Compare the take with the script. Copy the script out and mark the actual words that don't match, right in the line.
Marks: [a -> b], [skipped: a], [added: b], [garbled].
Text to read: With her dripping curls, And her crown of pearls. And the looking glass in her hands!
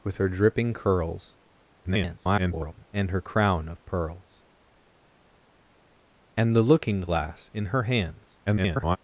With her dripping curls, [garbled] And her crown of pearls. And the looking glass in her hands! [garbled]